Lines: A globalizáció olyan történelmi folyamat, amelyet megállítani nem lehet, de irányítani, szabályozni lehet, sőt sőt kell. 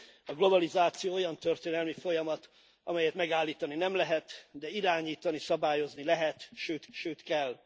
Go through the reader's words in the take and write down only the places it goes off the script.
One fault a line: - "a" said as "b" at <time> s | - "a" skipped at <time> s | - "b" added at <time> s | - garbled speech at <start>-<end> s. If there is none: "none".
none